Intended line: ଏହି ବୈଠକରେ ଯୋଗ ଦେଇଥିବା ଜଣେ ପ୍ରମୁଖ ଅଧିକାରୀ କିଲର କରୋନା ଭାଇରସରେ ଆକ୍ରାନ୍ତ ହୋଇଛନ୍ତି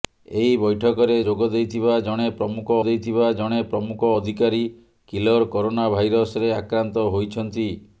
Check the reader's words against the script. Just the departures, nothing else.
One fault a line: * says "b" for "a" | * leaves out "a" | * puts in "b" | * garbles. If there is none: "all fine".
* puts in "ଦେଇଥିବା ଜଣେ ପ୍ରମୁଖ"